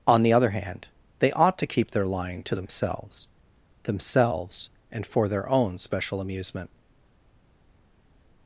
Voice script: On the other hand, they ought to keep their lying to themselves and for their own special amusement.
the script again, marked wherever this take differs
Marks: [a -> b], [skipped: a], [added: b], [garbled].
On the other hand, they ought to keep their lying to themselves [added: themselves] and for their own special amusement.